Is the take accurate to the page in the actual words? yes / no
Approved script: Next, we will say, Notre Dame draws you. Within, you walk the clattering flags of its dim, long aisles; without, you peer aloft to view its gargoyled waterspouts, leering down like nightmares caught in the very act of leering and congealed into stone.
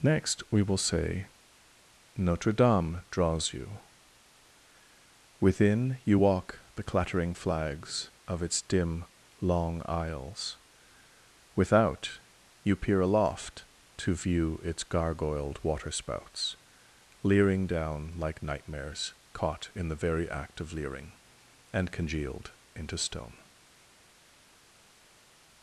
yes